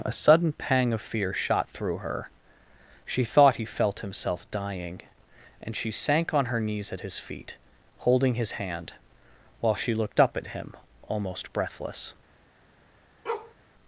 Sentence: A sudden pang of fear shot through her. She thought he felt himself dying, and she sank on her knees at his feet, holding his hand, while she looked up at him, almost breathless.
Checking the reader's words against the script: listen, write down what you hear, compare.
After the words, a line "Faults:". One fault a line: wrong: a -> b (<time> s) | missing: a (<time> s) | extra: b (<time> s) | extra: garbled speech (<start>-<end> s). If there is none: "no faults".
A sudden pang of fear shot through her. She thought he felt himself dying, and she sank on her knees at his feet, holding his hand, while she looked up at him, almost breathless.
Faults:
no faults